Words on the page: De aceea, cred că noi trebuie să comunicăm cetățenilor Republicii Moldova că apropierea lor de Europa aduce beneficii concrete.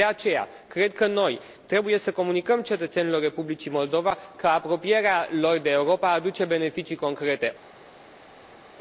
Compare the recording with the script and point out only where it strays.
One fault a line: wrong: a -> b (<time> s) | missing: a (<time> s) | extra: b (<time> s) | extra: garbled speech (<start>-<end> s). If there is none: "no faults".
no faults